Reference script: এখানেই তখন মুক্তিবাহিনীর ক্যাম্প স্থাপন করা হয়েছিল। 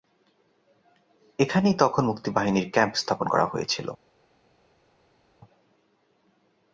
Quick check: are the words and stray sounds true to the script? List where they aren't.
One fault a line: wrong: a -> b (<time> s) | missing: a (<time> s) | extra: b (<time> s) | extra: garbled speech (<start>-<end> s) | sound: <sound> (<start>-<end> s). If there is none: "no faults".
no faults